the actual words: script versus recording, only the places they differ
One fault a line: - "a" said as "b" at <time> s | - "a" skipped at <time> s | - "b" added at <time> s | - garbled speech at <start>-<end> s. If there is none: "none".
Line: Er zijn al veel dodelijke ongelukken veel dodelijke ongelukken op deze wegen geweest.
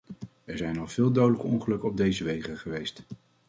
- "veel dodelijke ongelukken" skipped at 1.9 s